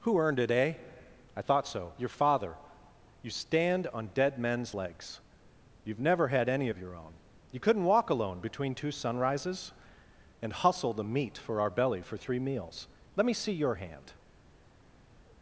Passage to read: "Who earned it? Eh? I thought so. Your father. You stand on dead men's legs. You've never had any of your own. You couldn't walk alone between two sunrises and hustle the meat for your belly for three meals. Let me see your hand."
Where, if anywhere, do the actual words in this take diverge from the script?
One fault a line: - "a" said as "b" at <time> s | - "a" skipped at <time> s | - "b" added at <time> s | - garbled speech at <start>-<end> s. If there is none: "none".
- "your" said as "our" at 11.6 s